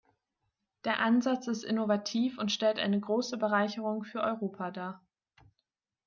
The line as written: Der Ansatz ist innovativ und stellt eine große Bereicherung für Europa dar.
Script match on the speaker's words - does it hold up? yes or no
yes